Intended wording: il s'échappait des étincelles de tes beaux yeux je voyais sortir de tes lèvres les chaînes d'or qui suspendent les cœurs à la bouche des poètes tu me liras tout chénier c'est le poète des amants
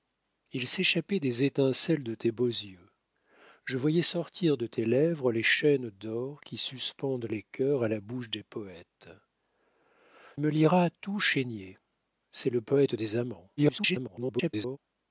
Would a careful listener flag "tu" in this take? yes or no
yes